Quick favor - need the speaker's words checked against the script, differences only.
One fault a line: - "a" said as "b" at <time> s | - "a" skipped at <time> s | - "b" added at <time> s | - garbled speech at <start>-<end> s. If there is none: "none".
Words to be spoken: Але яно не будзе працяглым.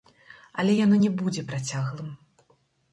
none